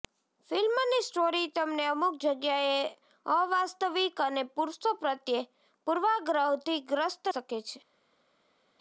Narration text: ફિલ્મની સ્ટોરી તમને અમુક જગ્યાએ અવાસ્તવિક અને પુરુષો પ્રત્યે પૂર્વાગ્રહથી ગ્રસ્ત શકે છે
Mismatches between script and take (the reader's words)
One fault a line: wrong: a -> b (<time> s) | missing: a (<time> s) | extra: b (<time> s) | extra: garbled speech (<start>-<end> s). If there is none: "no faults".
no faults